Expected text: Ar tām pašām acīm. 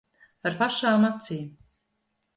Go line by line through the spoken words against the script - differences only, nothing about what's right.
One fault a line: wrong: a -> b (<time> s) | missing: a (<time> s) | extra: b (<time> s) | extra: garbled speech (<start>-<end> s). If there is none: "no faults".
missing: tām (0.6 s)